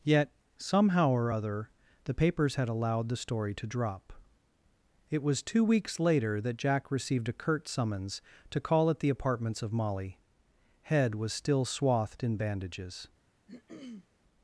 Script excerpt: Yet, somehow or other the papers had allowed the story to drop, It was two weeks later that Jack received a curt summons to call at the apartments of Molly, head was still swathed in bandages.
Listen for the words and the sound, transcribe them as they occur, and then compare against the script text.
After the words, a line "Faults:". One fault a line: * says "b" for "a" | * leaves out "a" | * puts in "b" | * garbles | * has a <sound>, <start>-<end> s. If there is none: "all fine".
Yet, somehow or other the papers had allowed the story to drop, It was two weeks later that Jack received a curt summons to call at the apartments of Molly, head was still swathed in bandages.
Faults:
* has a throat clearing, 13.5-14.1 s